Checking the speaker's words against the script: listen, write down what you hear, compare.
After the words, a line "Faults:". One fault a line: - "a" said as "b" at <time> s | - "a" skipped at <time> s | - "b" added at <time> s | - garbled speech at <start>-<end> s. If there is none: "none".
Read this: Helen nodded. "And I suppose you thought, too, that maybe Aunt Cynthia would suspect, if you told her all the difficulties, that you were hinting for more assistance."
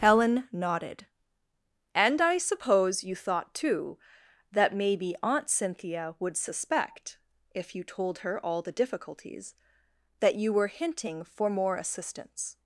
Helen nodded. "And I suppose you thought, too, that maybe Aunt Cynthia would suspect, if you told her all the difficulties, that you were hinting for more assistance."
Faults:
none